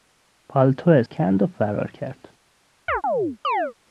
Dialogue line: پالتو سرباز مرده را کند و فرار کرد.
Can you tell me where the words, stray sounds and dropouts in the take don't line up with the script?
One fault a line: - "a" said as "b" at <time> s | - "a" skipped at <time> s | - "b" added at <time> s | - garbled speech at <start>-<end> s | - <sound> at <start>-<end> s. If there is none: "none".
- "سرباز مرده را" skipped at 1.0 s
- chirp at 2.9-3.7 s